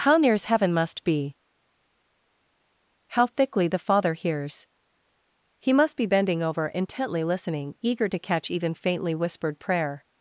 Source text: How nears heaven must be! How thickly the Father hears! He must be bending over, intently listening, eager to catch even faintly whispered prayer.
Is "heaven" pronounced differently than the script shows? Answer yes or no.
no